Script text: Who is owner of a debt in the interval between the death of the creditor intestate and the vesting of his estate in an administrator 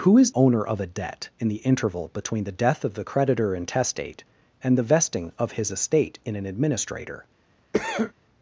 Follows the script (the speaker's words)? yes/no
yes